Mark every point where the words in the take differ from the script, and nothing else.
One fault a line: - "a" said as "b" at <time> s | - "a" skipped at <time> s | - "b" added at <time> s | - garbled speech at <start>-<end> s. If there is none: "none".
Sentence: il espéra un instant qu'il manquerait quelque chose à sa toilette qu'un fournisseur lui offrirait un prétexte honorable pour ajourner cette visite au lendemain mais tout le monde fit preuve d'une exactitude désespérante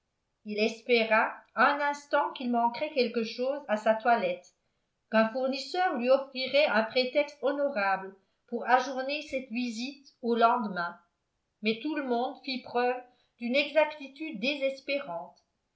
none